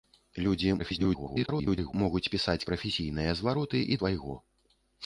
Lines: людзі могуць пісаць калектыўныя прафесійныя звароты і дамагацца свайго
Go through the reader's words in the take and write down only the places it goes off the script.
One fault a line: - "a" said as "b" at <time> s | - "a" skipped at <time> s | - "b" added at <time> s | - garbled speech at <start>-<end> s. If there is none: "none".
- garbled speech at 0.8-1.9 s
- "калектыўныя" skipped at 2.7 s
- "дамагацца" skipped at 4.0 s